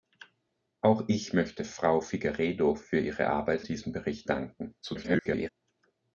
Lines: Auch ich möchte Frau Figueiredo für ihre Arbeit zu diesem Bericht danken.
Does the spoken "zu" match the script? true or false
false